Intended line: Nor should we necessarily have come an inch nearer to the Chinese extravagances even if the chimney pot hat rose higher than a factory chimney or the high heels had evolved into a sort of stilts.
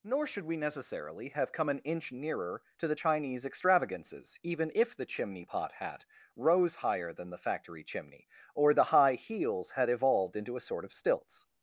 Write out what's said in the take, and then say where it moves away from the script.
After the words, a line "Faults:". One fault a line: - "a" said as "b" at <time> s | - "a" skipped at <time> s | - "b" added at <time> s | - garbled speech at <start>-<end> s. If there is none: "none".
Nor should we necessarily have come an inch nearer to the Chinese extravagances even if the chimney pot hat rose higher than the factory chimney or the high heels had evolved into a sort of stilts.
Faults:
- "a" said as "the" at 7.3 s